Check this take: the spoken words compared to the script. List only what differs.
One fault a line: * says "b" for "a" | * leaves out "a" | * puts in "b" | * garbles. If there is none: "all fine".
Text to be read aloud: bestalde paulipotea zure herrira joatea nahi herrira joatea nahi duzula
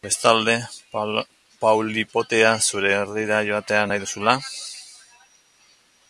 * leaves out "herrira joatea nahi"